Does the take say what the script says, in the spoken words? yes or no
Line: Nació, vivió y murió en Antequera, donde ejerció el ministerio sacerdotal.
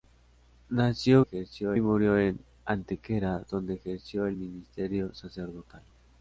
no